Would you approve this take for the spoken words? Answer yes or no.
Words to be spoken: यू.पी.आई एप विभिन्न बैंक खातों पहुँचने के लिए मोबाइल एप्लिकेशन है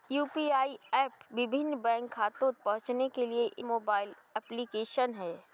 yes